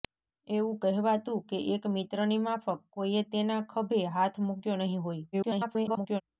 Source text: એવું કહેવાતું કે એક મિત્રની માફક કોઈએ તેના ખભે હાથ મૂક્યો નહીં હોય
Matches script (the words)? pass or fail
fail